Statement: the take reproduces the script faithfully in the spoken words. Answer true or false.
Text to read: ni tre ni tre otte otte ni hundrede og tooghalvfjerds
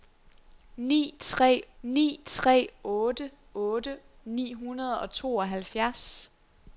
true